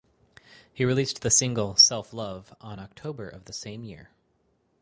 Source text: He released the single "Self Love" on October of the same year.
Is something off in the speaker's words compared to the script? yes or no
no